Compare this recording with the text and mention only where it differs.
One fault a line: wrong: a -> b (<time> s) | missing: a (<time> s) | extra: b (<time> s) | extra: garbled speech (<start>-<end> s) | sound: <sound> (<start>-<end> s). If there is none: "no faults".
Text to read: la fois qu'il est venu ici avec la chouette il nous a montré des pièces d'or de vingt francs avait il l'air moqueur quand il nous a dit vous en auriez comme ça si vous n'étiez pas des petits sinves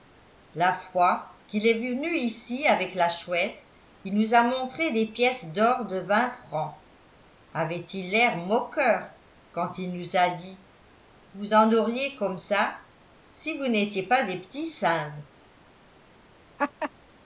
sound: laugh (16.6-16.9 s)